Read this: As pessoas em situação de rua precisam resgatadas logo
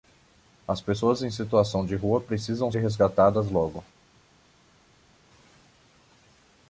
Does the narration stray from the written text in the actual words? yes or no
no